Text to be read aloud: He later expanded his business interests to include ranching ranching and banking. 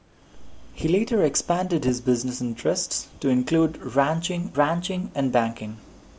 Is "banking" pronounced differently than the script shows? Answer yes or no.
no